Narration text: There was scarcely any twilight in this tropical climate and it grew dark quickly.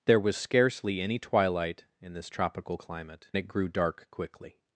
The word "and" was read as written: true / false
false